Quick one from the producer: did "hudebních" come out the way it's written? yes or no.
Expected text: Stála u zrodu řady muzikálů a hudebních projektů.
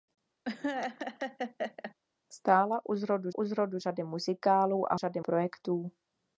no